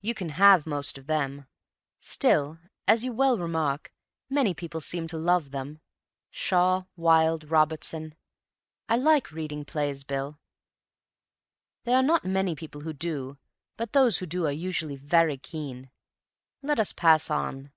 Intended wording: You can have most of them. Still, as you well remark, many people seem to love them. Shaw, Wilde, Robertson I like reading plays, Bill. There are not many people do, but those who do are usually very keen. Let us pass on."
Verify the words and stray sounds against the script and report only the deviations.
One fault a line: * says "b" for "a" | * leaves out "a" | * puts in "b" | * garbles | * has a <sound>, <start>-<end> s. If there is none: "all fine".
* puts in "who"